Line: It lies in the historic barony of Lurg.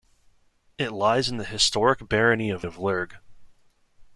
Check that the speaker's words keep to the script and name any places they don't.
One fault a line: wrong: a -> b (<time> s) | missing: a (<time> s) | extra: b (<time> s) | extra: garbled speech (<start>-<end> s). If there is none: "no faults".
extra: of (2.6 s)